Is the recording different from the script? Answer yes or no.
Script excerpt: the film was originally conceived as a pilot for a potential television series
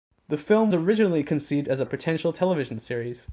yes